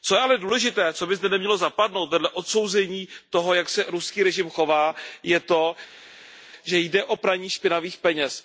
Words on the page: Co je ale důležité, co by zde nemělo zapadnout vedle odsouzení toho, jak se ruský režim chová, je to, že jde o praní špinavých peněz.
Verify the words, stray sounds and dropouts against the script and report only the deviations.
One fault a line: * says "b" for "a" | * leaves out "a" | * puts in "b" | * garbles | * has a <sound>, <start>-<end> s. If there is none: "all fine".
all fine